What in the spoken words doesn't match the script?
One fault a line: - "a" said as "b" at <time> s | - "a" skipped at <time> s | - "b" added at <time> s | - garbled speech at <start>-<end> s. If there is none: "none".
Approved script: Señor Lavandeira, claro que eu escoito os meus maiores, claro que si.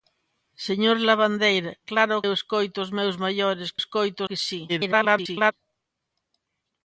- "que" skipped at 2.1 s
- "claro" said as "escoito" at 3.8 s
- garbled speech at 4.7-5.5 s